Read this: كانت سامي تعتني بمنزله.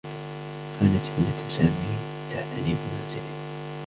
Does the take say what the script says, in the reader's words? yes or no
no